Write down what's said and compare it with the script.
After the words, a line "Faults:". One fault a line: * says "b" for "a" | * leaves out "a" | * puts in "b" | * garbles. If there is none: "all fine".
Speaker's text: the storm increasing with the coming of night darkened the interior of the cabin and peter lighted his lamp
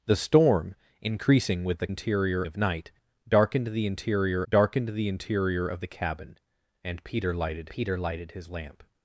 the storm increasing with the interior of night darkened the interior darkened the interior of the cabin and peter lighted peter lighted his lamp
Faults:
* says "interior" for "coming"
* puts in "darkened the interior"
* puts in "peter lighted"